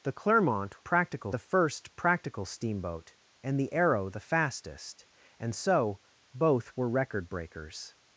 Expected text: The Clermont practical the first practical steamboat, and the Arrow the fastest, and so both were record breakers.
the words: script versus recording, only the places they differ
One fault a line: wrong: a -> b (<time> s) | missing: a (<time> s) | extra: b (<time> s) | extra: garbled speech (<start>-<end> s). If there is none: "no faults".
no faults